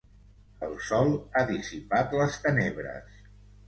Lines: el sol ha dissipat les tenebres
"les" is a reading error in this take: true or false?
false